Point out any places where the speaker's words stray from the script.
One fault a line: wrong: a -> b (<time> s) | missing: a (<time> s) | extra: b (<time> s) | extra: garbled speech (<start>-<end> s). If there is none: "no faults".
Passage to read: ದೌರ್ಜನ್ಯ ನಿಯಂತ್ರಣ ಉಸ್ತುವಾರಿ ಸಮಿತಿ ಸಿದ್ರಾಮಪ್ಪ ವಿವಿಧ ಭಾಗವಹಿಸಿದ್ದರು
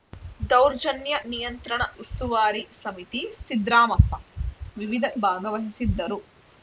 no faults